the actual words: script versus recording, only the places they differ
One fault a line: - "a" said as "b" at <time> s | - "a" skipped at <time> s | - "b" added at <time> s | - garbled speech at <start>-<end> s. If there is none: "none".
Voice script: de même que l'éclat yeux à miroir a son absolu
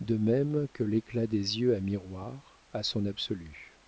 - "des" added at 1.3 s